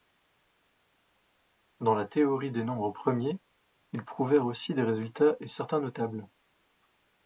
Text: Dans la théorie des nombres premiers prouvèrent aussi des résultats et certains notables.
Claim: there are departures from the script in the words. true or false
true